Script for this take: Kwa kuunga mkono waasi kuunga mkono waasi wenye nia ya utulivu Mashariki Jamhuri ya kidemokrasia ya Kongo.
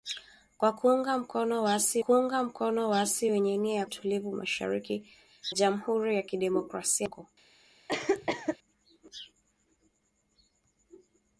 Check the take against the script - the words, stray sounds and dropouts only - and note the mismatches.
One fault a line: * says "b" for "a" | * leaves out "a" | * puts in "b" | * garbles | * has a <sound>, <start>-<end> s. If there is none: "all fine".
* has a cough, 7.9-8.6 s